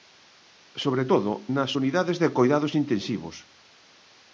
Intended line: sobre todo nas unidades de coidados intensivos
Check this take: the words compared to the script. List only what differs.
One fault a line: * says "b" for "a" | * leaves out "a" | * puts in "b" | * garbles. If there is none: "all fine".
all fine